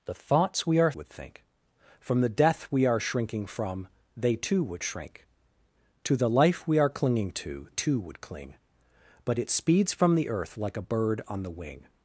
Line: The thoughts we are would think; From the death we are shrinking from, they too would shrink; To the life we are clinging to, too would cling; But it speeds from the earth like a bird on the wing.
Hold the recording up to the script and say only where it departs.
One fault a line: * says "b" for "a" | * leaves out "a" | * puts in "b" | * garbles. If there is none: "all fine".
all fine